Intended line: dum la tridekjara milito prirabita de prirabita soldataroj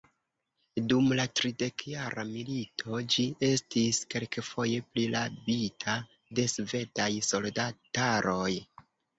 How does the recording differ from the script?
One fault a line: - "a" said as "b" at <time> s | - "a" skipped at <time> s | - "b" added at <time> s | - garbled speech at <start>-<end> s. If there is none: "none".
- "ĝi estis kelkfoje" added at 3.1 s
- "prirabita" said as "svedaj" at 6.6 s